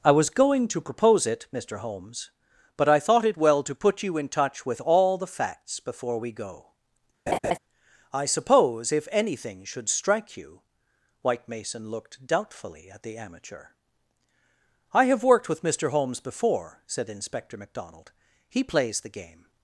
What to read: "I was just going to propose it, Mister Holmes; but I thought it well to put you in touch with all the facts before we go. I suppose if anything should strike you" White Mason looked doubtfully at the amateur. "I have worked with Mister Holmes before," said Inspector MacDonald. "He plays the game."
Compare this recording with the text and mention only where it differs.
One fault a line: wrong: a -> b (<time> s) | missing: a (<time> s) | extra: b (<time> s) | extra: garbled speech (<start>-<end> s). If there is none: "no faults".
missing: just (0.3 s)